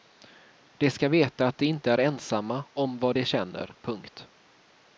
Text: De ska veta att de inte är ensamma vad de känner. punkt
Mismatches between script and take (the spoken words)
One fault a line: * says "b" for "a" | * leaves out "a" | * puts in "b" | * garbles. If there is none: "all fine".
* puts in "om"